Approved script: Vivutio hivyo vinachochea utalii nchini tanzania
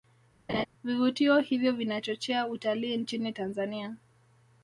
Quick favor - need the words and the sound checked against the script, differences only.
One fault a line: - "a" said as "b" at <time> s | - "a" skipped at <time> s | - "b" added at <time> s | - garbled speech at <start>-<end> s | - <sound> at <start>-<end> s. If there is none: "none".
- laugh at 0.5-0.7 s